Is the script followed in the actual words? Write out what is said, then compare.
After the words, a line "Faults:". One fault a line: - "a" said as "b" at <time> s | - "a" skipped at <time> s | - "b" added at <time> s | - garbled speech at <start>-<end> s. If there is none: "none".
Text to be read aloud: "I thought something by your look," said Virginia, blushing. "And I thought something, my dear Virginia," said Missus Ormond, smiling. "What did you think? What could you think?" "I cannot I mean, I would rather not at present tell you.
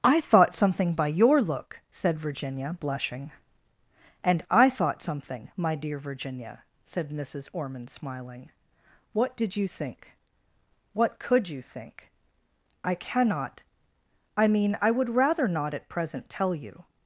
"I thought something by your look," said Virginia, blushing. "And I thought something, my dear Virginia," said Missus Ormond, smiling. "What did you think? What could you think?" "I cannot I mean, I would rather not at present tell you.
Faults:
none